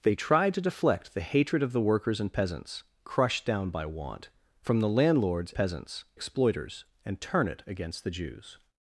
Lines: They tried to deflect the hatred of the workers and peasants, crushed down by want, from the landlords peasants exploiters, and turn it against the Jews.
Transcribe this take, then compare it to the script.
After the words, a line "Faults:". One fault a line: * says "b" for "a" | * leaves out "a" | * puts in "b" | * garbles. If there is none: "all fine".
They tried to deflect the hatred of the workers and peasants, crushed down by want, from the landlords peasants exploiters, and turn it against the Jews.
Faults:
all fine